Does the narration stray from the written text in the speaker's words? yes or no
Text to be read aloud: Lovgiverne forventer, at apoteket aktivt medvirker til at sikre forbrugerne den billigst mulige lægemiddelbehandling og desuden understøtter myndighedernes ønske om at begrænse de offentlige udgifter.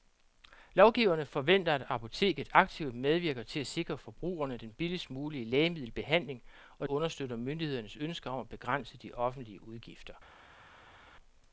yes